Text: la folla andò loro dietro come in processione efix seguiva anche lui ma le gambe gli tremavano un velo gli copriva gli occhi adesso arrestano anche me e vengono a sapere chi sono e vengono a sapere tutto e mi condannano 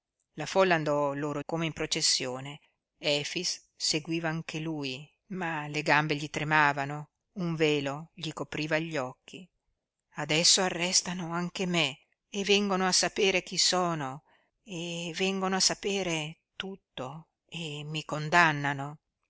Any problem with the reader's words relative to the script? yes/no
yes